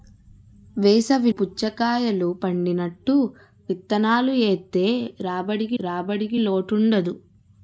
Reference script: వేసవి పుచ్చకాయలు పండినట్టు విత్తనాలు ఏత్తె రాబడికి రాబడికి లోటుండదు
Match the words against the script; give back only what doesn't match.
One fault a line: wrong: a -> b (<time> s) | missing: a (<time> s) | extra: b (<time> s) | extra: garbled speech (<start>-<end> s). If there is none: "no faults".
no faults